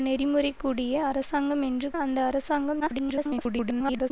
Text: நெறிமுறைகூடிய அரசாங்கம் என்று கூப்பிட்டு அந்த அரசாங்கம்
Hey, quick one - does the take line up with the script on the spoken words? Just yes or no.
no